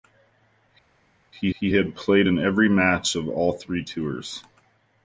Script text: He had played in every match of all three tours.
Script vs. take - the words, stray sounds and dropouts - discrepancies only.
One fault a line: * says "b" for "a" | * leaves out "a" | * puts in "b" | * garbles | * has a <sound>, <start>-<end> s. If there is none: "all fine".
* puts in "he"